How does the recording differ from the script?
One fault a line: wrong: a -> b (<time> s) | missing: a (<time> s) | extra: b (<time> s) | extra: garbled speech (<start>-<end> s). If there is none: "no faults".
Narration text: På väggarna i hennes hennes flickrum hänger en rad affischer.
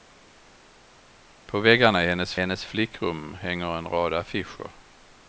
no faults